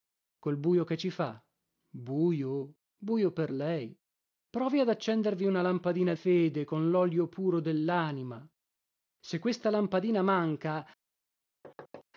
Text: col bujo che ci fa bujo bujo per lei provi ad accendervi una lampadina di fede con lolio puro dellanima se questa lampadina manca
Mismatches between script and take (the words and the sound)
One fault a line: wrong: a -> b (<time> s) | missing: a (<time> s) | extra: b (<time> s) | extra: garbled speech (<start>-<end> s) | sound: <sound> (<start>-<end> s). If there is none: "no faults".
missing: di (6.1 s)
sound: thud (11.6-12.0 s)